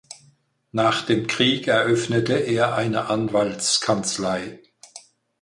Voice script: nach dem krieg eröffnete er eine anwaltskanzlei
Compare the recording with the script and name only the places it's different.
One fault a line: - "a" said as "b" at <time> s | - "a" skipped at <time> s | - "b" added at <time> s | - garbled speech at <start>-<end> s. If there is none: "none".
none